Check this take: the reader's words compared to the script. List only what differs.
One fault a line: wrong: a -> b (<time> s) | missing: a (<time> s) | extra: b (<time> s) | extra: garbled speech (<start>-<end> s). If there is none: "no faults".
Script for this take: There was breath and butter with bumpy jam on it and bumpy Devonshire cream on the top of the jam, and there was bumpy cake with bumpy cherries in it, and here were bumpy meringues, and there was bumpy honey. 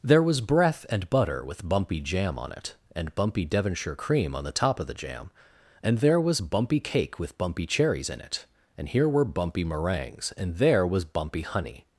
no faults